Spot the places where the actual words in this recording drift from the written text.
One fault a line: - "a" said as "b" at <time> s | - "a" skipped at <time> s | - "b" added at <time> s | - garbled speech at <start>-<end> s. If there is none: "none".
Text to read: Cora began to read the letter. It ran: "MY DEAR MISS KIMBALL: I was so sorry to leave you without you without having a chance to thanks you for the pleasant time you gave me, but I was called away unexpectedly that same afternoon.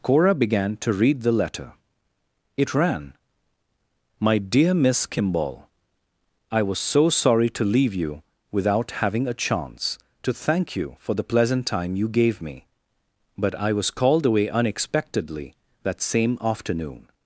- "you without" skipped at 9.0 s
- "thanks" said as "thank" at 10.3 s